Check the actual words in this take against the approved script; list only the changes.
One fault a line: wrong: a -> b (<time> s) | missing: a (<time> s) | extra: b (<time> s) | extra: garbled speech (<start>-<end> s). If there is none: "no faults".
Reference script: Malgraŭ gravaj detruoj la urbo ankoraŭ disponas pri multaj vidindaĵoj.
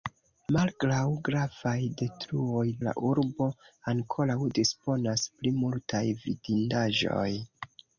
no faults